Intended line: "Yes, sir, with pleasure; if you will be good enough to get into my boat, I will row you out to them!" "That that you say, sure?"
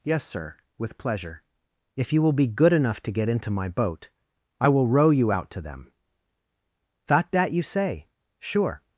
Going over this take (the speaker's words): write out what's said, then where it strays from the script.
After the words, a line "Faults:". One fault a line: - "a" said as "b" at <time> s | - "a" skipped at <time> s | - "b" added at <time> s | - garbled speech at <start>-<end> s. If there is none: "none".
"Yes, sir, with pleasure; if you will be good enough to get into my boat, I will row you out to them!" "That that you say, sure?"
Faults:
none